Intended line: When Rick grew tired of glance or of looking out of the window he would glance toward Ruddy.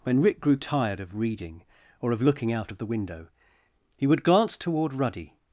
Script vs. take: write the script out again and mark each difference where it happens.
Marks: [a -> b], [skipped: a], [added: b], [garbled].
When Rick grew tired of [glance -> reading] or of looking out of the window he would glance toward Ruddy.